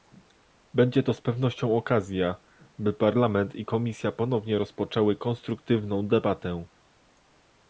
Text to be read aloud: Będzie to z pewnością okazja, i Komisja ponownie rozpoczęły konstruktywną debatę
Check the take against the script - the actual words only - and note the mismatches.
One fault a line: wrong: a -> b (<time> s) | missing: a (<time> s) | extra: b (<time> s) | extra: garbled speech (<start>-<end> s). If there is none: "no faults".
extra: by Parlament (2.8 s)